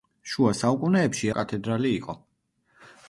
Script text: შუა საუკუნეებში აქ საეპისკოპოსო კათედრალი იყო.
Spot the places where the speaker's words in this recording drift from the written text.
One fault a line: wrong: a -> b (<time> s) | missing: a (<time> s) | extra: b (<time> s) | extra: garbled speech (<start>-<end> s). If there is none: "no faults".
missing: აქ საეპისკოპოსო (1.3 s)